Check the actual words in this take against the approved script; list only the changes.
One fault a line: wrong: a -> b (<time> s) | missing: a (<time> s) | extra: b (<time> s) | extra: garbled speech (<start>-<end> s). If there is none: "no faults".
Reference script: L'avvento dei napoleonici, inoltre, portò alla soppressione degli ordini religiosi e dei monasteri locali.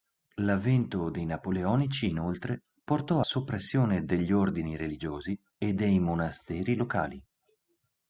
missing: alla (3.2 s)